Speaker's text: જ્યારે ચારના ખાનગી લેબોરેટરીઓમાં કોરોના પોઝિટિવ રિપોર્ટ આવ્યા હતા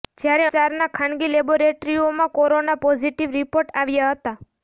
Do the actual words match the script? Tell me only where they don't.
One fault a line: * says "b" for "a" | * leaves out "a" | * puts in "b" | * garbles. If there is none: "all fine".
all fine